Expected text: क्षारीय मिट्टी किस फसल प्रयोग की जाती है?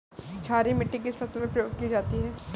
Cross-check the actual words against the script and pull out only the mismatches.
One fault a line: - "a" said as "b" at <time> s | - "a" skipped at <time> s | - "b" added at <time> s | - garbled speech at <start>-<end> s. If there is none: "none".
- "में" added at 1.4 s